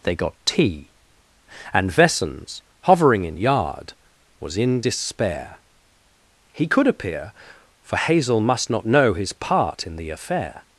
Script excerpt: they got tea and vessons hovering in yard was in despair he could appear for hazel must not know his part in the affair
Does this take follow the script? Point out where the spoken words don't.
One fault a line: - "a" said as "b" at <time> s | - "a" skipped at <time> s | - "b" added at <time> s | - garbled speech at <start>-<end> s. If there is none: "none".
none